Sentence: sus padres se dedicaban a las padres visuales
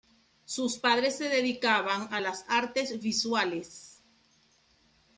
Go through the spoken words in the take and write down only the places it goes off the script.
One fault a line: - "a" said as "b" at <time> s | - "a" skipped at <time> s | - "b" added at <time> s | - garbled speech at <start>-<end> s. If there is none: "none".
- "padres" said as "artes" at 2.5 s